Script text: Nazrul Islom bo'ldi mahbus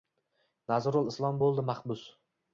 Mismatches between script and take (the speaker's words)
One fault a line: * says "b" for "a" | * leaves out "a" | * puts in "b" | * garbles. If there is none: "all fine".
all fine